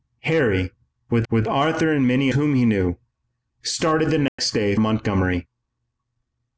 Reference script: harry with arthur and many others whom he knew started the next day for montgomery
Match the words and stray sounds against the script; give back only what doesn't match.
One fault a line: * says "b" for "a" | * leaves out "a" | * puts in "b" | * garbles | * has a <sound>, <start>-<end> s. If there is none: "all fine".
* puts in "with"
* leaves out "others"
* has a dropout, 4.3-4.4 s
* leaves out "for"